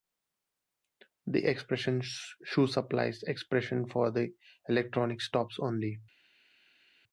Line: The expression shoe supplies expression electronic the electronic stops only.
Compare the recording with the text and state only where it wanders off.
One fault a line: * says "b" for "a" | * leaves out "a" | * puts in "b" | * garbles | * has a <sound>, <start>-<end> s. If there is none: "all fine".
* says "for" for "electronic"